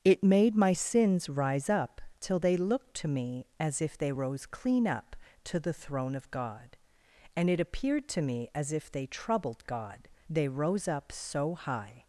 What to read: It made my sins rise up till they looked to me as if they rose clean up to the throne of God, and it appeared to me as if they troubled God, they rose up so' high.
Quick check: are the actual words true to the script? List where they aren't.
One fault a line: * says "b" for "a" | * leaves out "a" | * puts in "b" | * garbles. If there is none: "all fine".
all fine